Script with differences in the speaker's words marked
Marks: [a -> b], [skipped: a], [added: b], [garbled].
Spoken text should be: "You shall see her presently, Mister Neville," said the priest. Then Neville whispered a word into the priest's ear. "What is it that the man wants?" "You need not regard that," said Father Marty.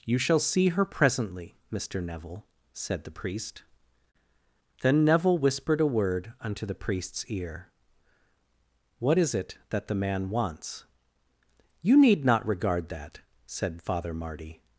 "You shall see her presently, Mister Neville," said the priest. Then Neville whispered a word [into -> unto] the priest's ear. "What is it that the man wants?" "You need not regard that," said Father Marty.